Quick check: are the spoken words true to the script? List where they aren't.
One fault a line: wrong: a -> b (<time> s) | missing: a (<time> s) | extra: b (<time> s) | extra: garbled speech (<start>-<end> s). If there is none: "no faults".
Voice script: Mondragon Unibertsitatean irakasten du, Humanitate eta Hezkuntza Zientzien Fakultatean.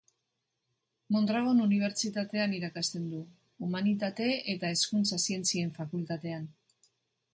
no faults